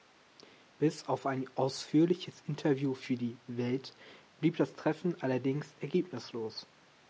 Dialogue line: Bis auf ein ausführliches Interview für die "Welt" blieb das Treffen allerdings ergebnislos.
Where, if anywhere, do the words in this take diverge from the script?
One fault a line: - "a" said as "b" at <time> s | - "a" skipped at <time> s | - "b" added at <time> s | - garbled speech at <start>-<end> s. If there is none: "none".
none